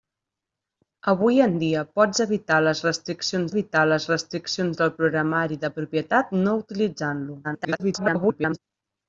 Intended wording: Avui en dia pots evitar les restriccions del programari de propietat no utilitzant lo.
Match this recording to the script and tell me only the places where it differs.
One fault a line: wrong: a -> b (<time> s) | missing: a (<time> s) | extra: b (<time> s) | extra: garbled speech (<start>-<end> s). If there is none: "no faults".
extra: evitar les restriccions (3.5 s)
extra: garbled speech (7.4-8.6 s)